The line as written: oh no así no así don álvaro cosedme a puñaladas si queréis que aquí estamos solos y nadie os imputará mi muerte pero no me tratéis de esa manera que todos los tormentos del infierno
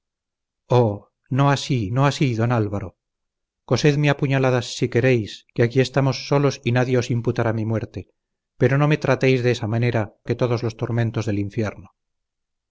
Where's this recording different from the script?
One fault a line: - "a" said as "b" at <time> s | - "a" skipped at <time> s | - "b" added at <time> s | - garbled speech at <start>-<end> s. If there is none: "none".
none